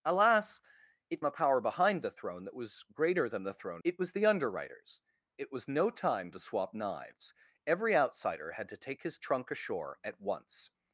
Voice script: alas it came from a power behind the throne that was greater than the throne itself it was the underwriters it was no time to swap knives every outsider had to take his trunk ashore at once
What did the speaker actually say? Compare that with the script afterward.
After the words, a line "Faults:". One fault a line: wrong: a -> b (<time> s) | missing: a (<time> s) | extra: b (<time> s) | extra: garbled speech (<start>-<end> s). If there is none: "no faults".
alas it a power behind the throne that was greater than the throne it was the underwriters it was no time to swap knives every outsider had to take his trunk ashore at once
Faults:
missing: came from (1.2 s)
missing: itself (3.8 s)